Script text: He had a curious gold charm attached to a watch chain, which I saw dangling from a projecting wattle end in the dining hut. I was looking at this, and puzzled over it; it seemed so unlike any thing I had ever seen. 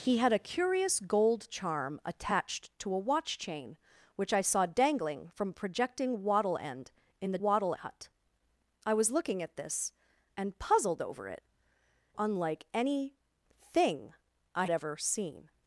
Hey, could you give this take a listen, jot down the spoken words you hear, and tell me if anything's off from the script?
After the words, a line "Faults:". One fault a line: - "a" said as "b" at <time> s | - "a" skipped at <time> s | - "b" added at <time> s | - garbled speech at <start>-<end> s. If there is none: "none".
He had a curious gold charm attached to a watch chain, which I saw dangling from a projecting wattle end in the wattle hut. I was looking at this, and puzzled over it; unlike any thing I ever seen.
Faults:
- "dining" said as "wattle" at 7.4 s
- "it seemed so" skipped at 11.4 s
- "had" skipped at 14.7 s